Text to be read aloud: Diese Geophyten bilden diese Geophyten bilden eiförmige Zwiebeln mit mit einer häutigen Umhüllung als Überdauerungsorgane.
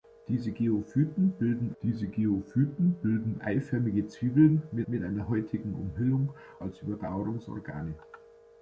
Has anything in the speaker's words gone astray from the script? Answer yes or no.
no